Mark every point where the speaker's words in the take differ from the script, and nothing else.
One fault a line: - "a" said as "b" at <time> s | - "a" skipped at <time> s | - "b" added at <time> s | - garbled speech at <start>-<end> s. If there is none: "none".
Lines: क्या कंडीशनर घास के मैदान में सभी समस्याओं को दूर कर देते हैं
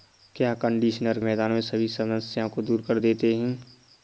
- "घास के" skipped at 1.2 s